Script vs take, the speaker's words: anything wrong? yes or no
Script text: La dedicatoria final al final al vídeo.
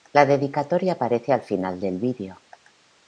yes